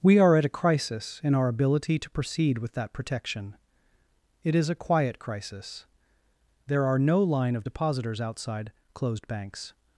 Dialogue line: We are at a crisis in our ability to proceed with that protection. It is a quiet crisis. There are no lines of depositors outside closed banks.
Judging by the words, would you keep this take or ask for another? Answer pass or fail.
fail